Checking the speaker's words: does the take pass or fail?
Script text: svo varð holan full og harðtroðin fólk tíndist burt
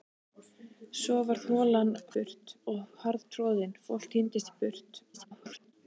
fail